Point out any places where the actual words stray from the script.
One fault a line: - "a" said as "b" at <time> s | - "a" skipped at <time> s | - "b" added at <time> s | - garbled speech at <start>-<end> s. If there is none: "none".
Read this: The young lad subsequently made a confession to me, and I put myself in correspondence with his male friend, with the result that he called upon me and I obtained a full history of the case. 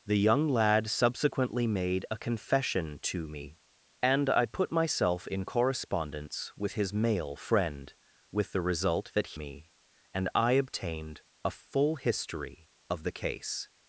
- "he called upon" skipped at 9.4 s